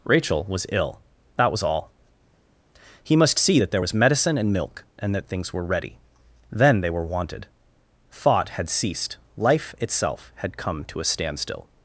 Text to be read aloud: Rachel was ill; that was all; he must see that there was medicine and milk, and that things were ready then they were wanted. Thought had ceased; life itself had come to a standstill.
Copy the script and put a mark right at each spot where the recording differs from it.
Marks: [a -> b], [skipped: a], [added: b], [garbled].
Rachel was ill; that was all; he must see that there was medicine and milk, and that things were ready then they were wanted. Thought had ceased; life itself had come to a standstill.